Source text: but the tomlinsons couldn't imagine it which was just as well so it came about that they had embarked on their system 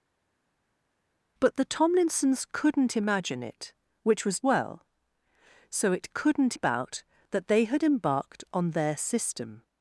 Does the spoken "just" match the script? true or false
false